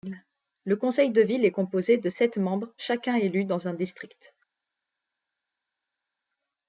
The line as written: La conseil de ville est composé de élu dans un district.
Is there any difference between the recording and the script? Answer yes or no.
yes